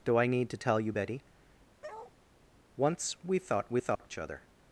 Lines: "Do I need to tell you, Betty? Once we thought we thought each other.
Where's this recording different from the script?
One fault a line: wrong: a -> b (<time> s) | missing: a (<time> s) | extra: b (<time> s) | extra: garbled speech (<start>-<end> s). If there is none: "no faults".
no faults